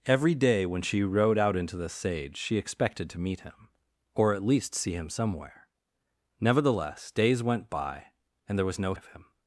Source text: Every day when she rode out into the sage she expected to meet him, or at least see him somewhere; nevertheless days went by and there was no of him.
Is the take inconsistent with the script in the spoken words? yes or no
no